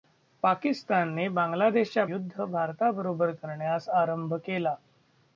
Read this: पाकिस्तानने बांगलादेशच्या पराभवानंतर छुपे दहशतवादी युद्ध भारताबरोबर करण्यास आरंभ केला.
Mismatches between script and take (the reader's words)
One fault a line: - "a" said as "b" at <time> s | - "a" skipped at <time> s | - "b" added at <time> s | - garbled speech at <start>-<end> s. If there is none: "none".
- "पराभवानंतर छुपे दहशतवादी" skipped at 2.0 s